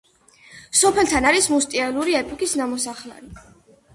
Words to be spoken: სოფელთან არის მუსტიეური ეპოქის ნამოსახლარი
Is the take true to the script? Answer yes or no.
yes